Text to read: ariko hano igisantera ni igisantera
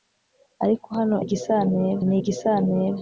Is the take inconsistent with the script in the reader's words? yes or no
no